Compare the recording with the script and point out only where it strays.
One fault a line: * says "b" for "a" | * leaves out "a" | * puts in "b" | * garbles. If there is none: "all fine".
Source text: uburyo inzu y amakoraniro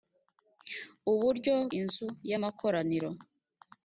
all fine